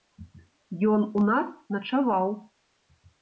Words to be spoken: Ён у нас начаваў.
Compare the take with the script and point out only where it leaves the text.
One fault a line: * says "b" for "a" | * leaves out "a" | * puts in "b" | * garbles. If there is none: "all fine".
all fine